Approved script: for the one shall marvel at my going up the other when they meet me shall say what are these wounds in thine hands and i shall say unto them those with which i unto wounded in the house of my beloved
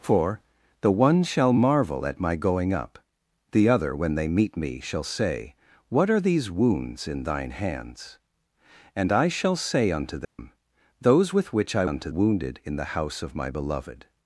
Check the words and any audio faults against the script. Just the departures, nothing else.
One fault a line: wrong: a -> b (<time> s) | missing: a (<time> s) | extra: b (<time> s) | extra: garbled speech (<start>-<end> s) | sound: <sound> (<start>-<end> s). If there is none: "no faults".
sound: dropout (10.2-10.4 s)